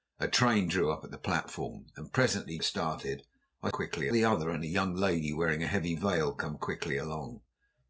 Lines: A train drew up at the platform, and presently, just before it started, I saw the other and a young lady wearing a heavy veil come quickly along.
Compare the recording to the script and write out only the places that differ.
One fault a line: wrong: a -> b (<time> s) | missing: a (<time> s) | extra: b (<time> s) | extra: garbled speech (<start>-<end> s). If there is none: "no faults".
missing: just before (2.6 s)
wrong: saw -> quickly (3.7 s)